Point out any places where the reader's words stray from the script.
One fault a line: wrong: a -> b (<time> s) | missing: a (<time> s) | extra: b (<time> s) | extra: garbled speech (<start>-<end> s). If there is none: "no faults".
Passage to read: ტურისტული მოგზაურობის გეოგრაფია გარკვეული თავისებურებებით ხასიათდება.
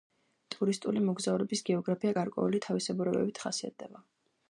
no faults